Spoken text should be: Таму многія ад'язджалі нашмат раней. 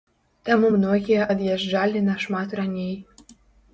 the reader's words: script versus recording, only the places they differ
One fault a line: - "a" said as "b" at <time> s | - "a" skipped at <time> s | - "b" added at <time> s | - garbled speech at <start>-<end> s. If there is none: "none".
none